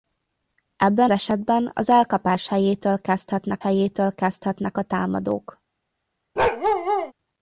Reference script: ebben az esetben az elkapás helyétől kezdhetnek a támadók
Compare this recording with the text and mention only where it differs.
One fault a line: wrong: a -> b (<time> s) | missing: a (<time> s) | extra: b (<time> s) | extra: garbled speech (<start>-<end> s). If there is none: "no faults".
missing: az (1.1 s)
extra: helyétől kezdhetnek (3.6 s)